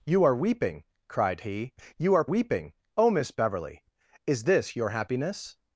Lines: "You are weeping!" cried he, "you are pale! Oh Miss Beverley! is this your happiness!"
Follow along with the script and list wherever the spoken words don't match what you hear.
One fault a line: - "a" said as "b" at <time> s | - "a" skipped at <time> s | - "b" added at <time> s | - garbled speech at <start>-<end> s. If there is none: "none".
- "pale" said as "weeping" at 2.2 s